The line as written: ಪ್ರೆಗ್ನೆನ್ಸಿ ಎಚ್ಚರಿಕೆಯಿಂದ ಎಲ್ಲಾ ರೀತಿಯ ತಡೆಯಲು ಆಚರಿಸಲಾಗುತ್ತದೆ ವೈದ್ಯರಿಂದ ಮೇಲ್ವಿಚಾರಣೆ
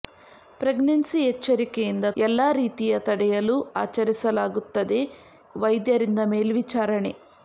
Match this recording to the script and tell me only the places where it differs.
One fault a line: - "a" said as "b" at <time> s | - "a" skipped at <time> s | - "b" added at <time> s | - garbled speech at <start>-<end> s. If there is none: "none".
none